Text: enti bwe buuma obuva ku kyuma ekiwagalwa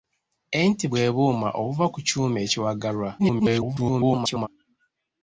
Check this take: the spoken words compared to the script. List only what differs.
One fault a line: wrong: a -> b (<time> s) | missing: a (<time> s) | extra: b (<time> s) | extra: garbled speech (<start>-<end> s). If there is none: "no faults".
extra: garbled speech (3.2-4.5 s)